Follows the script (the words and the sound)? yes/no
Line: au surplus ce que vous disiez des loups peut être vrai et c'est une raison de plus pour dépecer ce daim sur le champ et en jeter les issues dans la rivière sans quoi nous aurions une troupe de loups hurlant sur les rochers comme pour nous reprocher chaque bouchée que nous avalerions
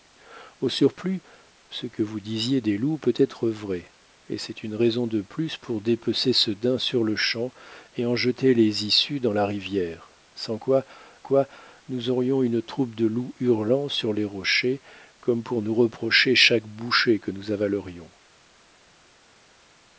no